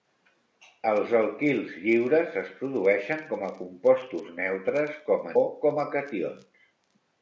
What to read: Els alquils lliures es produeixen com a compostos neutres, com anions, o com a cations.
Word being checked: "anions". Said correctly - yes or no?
no